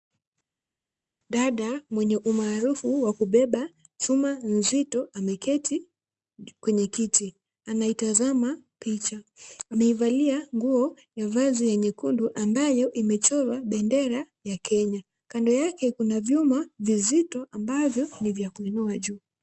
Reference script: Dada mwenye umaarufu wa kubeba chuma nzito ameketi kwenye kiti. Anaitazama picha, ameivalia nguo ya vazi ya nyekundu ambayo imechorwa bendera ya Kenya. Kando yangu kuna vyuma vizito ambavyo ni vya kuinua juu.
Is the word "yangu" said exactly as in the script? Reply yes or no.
no